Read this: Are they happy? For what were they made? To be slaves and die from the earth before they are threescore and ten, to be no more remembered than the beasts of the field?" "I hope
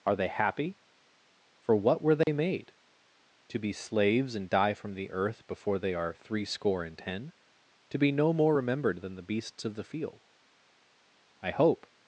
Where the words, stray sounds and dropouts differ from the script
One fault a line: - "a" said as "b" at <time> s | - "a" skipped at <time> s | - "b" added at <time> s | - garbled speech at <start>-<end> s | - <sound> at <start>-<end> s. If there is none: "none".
- dropout at 2.2-2.3 s